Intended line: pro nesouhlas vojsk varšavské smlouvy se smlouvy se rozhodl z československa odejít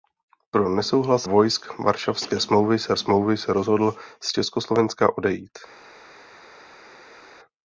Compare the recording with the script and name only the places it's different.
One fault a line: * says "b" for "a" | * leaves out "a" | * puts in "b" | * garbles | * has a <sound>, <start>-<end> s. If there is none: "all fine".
all fine